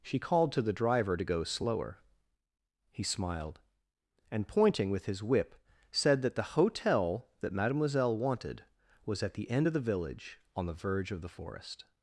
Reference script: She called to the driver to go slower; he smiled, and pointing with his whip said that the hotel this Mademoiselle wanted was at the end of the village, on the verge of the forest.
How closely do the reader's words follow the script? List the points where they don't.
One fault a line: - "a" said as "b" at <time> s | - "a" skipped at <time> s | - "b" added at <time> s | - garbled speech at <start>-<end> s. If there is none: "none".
- "this" said as "that" at 7.4 s